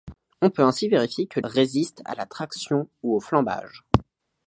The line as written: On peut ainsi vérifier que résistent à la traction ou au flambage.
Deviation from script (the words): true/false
false